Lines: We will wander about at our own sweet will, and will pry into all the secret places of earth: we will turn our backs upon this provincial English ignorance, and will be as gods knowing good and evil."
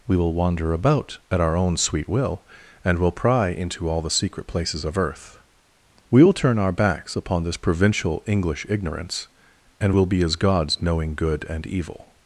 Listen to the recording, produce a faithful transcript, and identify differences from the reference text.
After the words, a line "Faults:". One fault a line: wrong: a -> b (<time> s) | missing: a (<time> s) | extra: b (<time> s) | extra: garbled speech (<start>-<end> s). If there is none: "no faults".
We will wander about at our own sweet will, and will pry into all the secret places of earth: we will turn our backs upon this provincial English ignorance, and will be as gods knowing good and evil."
Faults:
no faults